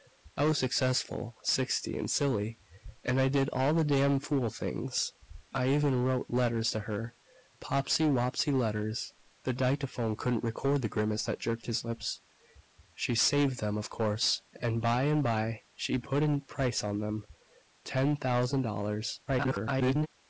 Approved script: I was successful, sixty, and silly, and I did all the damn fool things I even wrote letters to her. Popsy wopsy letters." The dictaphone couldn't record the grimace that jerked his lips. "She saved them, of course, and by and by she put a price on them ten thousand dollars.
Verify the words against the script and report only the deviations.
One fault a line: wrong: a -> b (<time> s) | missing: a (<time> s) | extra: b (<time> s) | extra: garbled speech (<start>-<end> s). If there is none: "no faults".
extra: garbled speech (19.3-20.1 s)